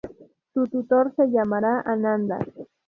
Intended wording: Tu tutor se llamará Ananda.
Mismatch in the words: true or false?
false